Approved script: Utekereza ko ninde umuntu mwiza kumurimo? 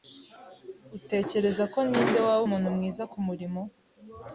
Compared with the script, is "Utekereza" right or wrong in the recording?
right